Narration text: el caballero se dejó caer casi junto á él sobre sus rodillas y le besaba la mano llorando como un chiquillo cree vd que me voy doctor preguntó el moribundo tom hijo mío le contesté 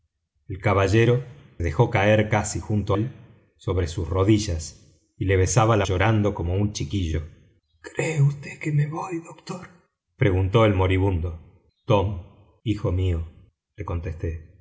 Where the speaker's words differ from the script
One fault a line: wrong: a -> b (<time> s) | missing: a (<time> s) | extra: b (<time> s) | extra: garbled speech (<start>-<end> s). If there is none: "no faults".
missing: se (1.2 s)
missing: á (3.0 s)
missing: mano (5.9 s)